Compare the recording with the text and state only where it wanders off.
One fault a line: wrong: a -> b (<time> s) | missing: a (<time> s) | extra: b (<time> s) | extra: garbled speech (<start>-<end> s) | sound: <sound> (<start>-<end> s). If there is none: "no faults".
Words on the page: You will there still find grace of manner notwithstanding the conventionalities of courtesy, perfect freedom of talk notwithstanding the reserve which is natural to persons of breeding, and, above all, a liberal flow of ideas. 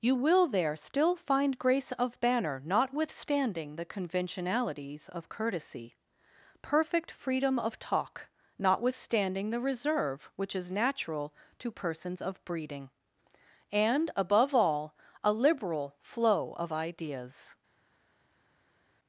wrong: manner -> banner (2.2 s)